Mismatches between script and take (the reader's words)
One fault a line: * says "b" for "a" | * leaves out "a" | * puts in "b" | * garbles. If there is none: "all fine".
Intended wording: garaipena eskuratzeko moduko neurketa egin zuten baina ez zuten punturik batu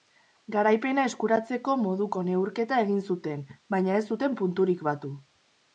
all fine